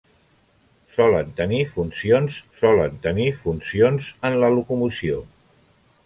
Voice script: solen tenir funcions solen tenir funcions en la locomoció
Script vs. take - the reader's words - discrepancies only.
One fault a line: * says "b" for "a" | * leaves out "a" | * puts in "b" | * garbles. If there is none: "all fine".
all fine